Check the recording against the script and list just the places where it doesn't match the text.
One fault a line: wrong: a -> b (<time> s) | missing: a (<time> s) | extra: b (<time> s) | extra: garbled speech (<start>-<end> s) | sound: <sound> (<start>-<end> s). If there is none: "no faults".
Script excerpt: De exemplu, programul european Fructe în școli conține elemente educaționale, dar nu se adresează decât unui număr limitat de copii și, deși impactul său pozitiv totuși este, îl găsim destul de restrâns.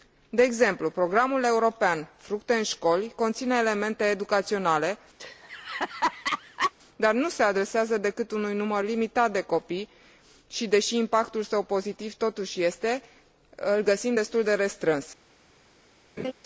sound: laugh (5.2-6.7 s)
sound: laugh (16.2-16.3 s)